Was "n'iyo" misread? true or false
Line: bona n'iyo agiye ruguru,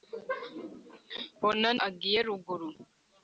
true